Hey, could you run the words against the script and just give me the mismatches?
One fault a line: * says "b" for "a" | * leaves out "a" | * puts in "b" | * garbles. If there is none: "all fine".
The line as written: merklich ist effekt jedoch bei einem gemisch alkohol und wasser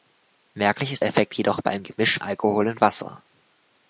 all fine